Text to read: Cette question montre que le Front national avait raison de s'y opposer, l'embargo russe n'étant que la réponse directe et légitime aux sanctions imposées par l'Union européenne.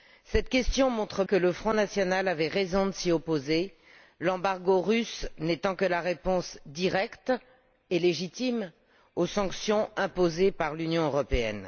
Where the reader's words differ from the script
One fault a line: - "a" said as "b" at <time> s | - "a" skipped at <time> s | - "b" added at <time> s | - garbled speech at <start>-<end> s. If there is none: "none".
none